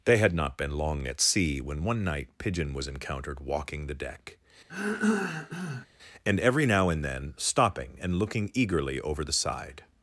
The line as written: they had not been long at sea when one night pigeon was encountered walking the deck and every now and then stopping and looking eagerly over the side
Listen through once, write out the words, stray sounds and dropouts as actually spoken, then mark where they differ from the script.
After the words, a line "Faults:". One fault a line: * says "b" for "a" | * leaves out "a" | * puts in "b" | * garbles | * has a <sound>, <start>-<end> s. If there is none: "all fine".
they had not been long at sea when one night pigeon was encountered walking the deck and every now and then stopping and looking eagerly over the side
Faults:
* has a throat clearing, 4.7-5.9 s